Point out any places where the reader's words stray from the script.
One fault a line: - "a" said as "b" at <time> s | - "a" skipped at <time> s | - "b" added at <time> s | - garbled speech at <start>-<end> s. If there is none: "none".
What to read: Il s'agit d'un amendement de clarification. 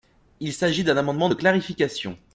none